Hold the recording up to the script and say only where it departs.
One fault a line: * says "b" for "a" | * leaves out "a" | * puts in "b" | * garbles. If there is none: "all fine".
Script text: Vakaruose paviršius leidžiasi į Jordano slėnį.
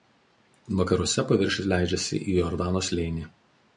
all fine